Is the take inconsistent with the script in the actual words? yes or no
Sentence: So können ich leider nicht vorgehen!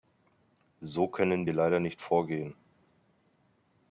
yes